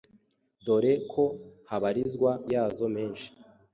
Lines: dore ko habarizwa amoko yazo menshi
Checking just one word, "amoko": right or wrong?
wrong